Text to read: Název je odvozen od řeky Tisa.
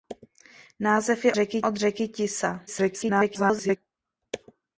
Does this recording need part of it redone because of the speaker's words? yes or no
yes